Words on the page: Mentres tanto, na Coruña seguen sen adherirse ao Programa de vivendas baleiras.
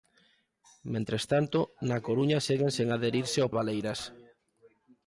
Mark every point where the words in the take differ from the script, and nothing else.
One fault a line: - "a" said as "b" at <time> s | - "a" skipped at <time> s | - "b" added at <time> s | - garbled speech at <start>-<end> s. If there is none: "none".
- "Programa de vivendas" skipped at 3.5 s